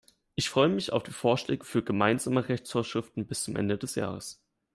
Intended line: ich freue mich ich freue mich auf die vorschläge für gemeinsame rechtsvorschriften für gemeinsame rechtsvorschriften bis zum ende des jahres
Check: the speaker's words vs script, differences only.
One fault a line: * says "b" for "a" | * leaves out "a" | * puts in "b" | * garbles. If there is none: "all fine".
* leaves out "ich freue mich"
* leaves out "für gemeinsame rechtsvorschriften"